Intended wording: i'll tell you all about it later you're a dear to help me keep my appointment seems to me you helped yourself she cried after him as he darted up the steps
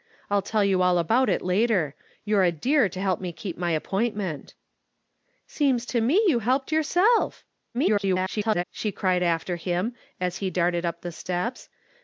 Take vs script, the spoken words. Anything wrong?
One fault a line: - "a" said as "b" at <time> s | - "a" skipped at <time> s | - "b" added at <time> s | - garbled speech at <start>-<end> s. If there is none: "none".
- garbled speech at 7.7-8.6 s